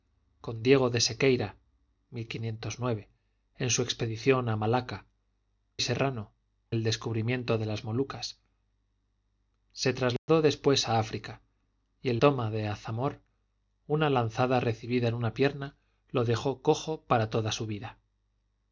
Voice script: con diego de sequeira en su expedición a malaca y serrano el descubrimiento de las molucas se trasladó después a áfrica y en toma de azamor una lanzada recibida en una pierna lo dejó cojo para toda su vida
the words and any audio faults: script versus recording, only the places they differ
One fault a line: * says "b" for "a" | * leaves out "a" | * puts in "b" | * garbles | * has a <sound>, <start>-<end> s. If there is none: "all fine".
* has a dropout, 10.2-10.3 s